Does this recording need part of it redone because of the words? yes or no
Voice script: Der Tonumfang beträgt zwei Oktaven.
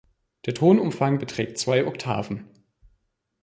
no